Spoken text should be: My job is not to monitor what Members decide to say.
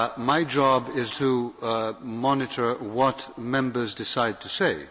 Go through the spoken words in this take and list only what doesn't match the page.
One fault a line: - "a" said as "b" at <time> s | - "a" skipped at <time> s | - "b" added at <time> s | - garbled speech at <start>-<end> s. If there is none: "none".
- "not" skipped at 1.1 s